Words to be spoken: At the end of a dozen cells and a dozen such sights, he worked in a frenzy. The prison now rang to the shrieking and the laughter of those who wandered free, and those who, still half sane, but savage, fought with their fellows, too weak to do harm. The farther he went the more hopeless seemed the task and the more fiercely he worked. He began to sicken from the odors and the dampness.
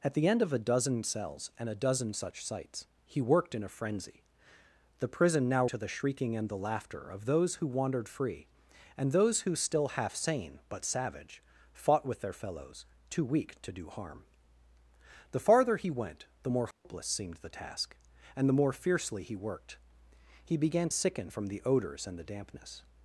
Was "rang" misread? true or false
true